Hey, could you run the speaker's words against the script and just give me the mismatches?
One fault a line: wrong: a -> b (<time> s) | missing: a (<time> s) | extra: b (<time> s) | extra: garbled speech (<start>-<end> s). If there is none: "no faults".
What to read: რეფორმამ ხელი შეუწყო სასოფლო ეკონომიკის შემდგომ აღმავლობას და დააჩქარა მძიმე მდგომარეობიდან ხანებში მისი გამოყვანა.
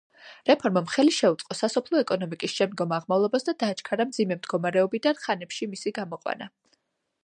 no faults